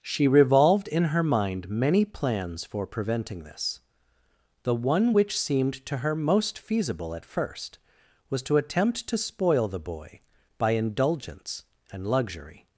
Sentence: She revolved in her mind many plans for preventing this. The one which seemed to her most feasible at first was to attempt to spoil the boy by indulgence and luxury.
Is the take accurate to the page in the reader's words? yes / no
yes